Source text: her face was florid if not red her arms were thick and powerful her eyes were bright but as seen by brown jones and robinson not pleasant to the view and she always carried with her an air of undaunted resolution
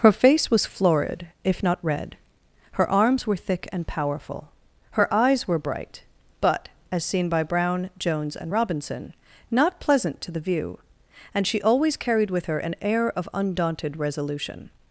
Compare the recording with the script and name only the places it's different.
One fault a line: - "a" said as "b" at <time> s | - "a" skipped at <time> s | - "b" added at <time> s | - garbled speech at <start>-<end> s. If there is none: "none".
none